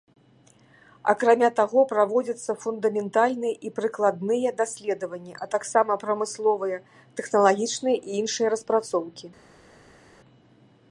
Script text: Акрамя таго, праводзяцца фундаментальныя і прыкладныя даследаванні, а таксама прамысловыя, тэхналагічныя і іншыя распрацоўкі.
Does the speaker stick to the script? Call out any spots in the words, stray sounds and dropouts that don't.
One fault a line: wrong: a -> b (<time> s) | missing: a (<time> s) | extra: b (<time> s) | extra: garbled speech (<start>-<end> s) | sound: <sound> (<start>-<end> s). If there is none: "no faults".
no faults